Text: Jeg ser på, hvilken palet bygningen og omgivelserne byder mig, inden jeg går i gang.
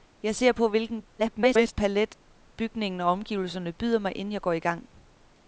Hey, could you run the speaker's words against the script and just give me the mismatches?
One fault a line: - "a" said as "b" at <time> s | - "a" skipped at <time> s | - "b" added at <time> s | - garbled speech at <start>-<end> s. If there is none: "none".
- garbled speech at 1.2-1.7 s